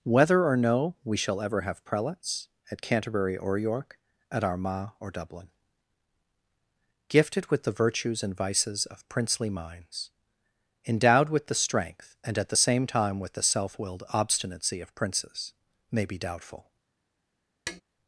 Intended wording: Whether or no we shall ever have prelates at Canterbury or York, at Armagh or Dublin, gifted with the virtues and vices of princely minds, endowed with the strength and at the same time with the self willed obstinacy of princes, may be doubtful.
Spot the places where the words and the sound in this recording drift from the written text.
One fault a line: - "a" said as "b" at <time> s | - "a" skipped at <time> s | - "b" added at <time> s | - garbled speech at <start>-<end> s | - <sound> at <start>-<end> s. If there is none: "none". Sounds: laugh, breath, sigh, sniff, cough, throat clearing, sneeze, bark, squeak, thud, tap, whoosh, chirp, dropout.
- tap at 17.7-17.8 s